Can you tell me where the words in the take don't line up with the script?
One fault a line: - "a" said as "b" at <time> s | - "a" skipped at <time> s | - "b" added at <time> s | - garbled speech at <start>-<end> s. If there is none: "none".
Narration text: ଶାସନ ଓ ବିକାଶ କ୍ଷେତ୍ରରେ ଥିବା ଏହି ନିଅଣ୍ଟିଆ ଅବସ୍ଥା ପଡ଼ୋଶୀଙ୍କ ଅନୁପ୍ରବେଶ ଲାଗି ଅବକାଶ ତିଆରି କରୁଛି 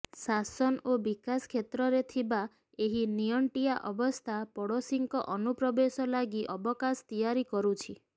none